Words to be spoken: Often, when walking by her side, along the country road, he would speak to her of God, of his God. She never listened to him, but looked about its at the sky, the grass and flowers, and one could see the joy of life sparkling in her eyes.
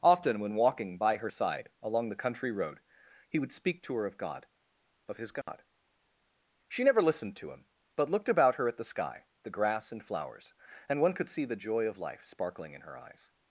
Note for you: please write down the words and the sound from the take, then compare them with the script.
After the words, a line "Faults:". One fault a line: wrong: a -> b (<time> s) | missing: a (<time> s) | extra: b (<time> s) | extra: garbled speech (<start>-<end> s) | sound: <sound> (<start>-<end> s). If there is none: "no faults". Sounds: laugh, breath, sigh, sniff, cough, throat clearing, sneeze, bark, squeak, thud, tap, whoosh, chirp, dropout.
Often, when walking by her side, along the country road, he would speak to her of God, of his God. She never listened to him, but looked about her at the sky, the grass and flowers, and one could see the joy of life sparkling in her eyes.
Faults:
sound: dropout (5.4-5.5 s)
wrong: its -> her (8.6 s)